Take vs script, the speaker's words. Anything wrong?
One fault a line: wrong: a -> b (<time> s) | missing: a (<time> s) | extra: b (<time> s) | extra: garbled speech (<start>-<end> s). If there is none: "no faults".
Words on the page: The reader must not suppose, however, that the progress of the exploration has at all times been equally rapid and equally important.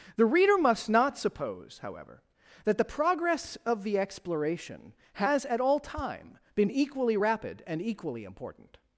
wrong: times -> time (5.8 s)